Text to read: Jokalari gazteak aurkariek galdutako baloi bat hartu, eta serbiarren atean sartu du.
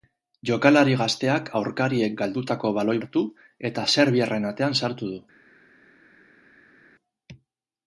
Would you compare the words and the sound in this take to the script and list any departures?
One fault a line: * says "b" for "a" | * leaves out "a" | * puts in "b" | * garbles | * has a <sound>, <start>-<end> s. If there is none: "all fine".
* leaves out "bat"